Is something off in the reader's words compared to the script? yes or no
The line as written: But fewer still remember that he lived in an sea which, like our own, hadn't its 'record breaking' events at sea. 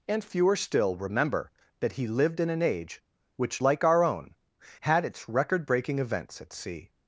yes